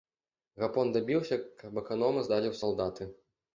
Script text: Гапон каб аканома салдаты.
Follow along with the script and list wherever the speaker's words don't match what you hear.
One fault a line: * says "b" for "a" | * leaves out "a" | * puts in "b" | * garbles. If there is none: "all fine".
* puts in "дабіўся"
* puts in "здалі ў"